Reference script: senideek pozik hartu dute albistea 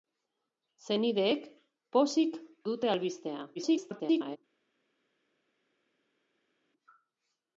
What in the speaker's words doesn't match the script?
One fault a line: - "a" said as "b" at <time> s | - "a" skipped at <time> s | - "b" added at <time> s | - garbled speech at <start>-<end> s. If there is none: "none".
- "hartu" skipped at 2.4 s
- garbled speech at 3.6-4.4 s